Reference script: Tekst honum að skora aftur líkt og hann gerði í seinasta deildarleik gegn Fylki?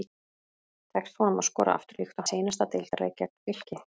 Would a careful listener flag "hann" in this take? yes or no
yes